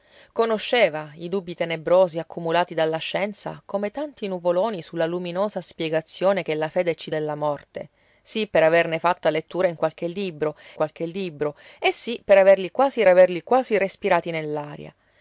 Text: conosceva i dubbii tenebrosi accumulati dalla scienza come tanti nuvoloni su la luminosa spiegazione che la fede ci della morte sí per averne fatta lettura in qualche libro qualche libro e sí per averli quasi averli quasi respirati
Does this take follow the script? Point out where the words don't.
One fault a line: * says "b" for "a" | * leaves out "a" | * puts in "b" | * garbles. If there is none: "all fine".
all fine